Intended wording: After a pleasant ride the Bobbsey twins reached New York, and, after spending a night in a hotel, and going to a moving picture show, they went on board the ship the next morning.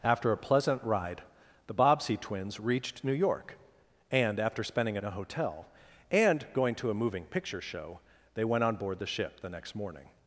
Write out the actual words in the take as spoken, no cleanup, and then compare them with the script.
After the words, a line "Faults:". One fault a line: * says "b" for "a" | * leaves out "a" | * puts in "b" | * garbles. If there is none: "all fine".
After a pleasant ride the Bobbsey twins reached New York, and, after spending a in a hotel, and going to a moving picture show, they went on board the ship the next morning.
Faults:
* leaves out "night"